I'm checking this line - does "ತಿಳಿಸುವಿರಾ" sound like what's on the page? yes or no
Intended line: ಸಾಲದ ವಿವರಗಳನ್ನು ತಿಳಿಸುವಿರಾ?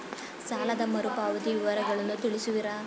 yes